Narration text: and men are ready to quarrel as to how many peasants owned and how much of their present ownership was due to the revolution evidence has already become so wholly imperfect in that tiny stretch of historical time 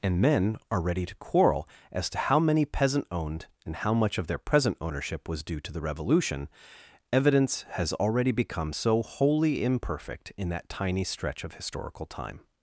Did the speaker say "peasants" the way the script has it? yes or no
no